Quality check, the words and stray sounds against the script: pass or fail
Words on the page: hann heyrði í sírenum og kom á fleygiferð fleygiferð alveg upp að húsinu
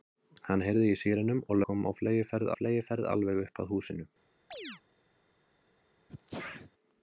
fail